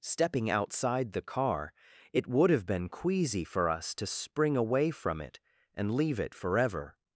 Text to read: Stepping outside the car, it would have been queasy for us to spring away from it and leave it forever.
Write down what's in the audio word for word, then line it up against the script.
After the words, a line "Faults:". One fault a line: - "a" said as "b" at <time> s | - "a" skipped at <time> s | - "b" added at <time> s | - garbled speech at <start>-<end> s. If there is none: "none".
Stepping outside the car, it would have been queasy for us to spring away from it and leave it forever.
Faults:
none